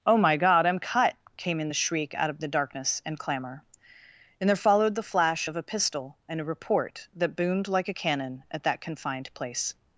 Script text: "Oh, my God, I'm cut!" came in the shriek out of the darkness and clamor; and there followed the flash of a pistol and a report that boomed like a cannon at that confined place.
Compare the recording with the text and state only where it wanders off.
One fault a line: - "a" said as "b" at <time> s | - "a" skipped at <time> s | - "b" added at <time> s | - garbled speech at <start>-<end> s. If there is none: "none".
none